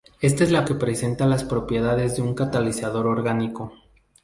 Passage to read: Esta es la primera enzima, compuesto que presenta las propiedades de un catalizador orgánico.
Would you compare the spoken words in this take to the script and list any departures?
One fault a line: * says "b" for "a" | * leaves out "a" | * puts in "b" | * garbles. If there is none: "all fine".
* leaves out "primera enzima compuesto"